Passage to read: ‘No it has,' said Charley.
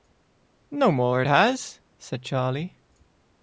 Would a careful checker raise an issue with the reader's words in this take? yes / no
yes